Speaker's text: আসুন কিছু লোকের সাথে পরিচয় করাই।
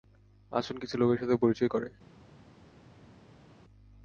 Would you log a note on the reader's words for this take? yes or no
no